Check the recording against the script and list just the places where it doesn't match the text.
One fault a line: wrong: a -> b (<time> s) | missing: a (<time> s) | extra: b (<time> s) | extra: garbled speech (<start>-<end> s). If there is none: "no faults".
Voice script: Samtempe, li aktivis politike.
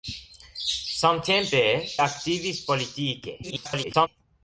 missing: li (1.6 s)
extra: garbled speech (3.4-4.1 s)